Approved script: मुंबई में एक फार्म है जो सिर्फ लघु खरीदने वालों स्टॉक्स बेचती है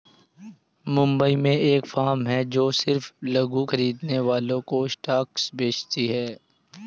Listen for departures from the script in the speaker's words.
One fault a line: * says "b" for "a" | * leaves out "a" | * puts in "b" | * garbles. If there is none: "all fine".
* puts in "को"